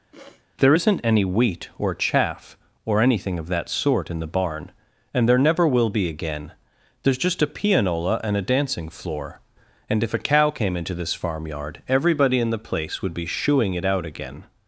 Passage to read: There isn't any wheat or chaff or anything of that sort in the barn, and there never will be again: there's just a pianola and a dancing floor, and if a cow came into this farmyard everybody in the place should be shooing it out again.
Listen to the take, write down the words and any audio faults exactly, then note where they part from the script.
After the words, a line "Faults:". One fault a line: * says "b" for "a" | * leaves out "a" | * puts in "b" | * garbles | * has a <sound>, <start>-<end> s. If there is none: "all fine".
There isn't any wheat or chaff or anything of that sort in the barn, and there never will be again: there's just a pianola and a dancing floor, and if a cow came into this farmyard everybody in the place would be shooing it out again.
Faults:
* has a sniff, 0.1-0.5 s
* says "would" for "should"